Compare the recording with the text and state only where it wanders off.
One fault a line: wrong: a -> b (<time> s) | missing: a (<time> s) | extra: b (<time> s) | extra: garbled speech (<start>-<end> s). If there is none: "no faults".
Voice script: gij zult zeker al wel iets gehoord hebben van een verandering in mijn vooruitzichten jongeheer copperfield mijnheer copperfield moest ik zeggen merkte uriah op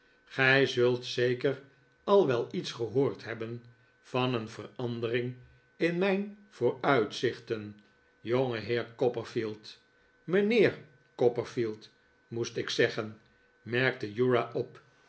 no faults